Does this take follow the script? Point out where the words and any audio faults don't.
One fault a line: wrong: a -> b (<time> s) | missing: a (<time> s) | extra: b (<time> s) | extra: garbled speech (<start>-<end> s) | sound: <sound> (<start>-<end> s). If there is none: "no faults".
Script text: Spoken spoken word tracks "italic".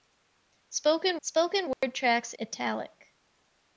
sound: dropout (1.7-1.8 s)